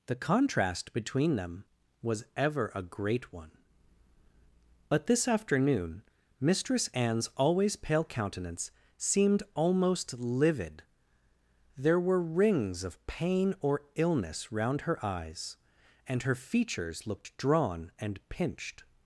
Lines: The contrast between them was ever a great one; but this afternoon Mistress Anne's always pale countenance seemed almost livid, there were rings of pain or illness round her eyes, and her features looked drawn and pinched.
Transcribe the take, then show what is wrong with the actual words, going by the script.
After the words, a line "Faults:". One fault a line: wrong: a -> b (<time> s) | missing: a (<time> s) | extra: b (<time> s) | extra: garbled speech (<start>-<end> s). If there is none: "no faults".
The contrast between them was ever a great one; but this afternoon Mistress Anne's always pale countenance seemed almost livid, there were rings of pain or illness round her eyes, and her features looked drawn and pinched.
Faults:
no faults